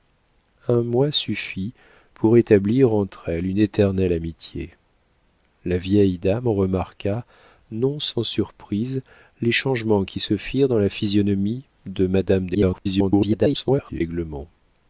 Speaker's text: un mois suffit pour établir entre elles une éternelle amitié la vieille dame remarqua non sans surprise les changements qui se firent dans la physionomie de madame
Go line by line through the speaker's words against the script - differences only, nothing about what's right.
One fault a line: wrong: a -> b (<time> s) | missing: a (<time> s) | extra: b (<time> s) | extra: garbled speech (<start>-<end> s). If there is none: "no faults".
extra: garbled speech (12.5-14.0 s)